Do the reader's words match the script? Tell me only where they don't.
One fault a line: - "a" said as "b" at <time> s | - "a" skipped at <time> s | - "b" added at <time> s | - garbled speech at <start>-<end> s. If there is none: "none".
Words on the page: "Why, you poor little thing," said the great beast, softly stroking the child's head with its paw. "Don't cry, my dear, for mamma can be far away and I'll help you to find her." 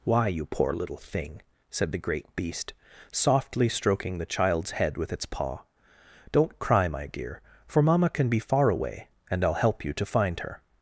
none